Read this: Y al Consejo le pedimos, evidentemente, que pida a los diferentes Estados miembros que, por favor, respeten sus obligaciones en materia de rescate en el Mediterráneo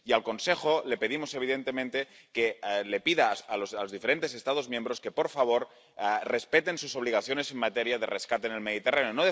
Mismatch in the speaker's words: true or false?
false